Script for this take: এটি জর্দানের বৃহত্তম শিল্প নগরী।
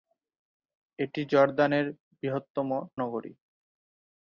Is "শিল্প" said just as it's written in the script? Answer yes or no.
no